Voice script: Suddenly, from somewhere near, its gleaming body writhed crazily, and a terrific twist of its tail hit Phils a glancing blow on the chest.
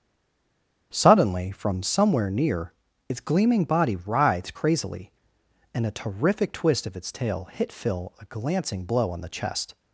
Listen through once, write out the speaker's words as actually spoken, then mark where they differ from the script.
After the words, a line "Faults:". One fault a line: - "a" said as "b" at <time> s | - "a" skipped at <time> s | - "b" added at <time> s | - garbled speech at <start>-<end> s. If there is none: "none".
Suddenly, from somewhere near, its gleaming body writhed crazily, and a terrific twist of its tail hit Phil a glancing blow on the chest.
Faults:
- "Phils" said as "Phil" at 7.7 s